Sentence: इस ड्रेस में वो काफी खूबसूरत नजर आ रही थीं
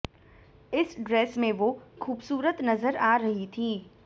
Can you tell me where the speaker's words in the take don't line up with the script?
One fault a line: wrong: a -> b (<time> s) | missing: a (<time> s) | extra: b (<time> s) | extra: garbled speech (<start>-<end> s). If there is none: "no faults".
missing: काफी (1.7 s)